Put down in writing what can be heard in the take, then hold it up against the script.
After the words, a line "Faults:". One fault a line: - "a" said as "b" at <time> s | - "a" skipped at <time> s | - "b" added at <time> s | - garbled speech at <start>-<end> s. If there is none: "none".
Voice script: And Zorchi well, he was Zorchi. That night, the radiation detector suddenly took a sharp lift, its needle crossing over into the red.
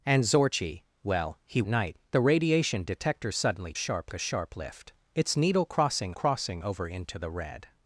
And Zorchi well, he night, the radiation detector suddenly sharp a sharp lift, its needle crossing crossing over into the red.
Faults:
- "was Zorchi That" skipped at 1.6 s
- "took" said as "sharp" at 3.8 s
- "crossing" added at 6.1 s